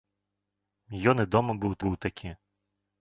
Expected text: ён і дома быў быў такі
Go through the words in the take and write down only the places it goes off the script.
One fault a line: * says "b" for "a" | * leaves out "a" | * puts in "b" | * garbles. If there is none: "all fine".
all fine